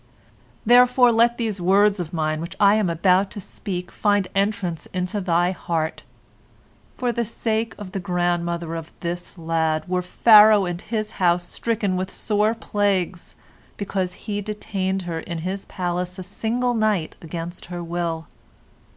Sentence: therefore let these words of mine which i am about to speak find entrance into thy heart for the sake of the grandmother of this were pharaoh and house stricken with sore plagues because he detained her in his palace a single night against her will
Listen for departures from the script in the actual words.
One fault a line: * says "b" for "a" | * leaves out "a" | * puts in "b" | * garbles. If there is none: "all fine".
* puts in "lad"
* puts in "his"